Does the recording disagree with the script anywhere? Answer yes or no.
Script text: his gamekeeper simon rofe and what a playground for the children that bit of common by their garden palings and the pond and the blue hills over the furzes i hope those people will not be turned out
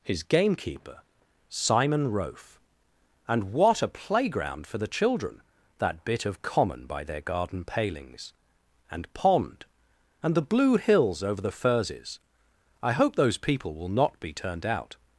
yes